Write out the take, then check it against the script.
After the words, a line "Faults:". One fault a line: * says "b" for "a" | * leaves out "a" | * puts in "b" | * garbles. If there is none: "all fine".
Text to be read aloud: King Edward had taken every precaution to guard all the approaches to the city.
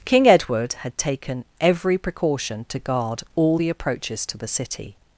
King Edward had taken every precaution to guard all the approaches to the city.
Faults:
all fine